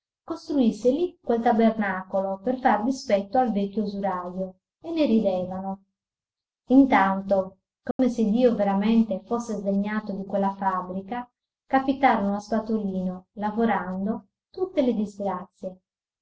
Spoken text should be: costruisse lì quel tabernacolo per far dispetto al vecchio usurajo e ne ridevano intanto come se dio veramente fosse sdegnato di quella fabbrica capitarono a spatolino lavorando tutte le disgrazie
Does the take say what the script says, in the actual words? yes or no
yes